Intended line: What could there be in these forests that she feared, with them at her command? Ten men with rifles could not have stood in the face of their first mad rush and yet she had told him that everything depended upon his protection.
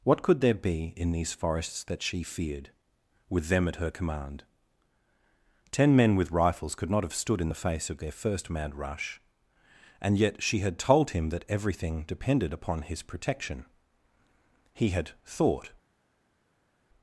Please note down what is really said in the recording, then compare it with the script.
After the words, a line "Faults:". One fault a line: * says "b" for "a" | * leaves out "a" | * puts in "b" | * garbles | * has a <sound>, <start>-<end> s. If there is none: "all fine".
What could there be in these forests that she feared, with them at her command? Ten men with rifles could not have stood in the face of their first mad rush and yet she had told him that everything depended upon his protection. He had thought
Faults:
* puts in "He had thought"